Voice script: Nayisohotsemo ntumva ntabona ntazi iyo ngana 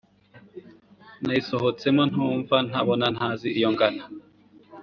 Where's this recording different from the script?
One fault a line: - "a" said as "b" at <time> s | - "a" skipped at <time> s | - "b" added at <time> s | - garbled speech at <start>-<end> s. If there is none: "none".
none